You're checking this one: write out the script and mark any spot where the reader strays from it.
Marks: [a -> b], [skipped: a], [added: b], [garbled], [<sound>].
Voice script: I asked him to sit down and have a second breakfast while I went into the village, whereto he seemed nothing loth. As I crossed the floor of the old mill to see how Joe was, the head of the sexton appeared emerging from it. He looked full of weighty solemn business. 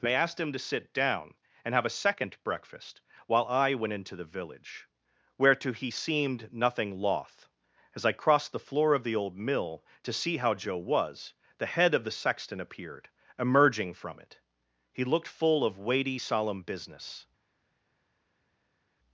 [I -> they] asked him to sit down and have a second breakfast while I went into the village, whereto he seemed nothing loth. As I crossed the floor of the old mill to see how Joe was, the head of the sexton appeared emerging from it. He looked full of weighty solemn business.